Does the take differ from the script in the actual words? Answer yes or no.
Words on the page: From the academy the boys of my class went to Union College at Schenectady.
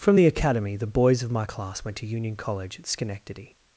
no